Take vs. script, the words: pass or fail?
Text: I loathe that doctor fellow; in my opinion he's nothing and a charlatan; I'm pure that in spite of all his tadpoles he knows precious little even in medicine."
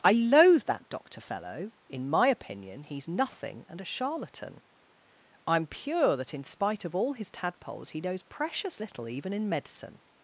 pass